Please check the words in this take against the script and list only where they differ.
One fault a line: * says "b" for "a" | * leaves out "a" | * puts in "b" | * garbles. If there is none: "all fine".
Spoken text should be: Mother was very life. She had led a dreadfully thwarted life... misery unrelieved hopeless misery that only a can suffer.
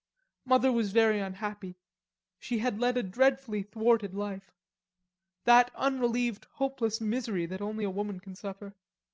* says "unhappy" for "life"
* says "that" for "misery"
* puts in "woman"